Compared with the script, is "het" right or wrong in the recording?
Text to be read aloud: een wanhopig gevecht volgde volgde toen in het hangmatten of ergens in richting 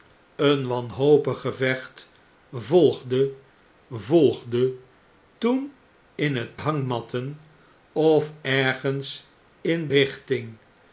right